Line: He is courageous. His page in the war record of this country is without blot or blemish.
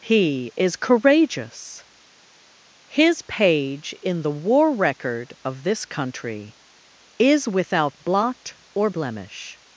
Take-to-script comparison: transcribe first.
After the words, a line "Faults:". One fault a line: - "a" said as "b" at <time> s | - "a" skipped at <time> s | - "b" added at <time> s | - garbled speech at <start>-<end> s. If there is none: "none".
He is courageous. His page in the war record of this country is without blot or blemish.
Faults:
none